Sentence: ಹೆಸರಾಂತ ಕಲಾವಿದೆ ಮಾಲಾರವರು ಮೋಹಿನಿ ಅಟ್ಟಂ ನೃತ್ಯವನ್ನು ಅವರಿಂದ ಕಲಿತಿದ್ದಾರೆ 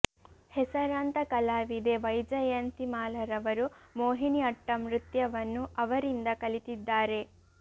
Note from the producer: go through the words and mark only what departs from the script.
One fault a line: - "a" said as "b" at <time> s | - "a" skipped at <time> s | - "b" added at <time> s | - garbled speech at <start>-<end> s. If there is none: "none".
- "ವೈಜಯಂತಿ" added at 2.0 s